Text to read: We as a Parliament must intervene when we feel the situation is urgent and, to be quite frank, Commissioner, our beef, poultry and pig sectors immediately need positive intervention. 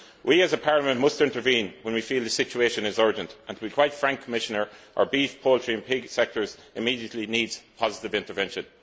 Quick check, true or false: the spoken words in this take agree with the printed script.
true